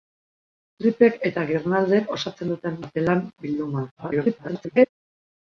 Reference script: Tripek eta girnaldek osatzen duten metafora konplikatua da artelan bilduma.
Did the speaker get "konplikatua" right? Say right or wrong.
wrong